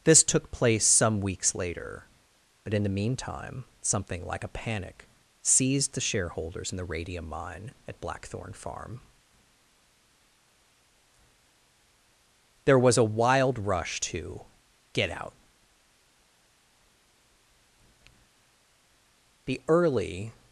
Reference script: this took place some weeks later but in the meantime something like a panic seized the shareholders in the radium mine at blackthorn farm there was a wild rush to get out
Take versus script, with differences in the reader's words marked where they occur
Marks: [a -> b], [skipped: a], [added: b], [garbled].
this took place some weeks later but in the meantime something like a panic seized the shareholders in the radium mine at blackthorn farm there was a wild rush to get out [added: the early]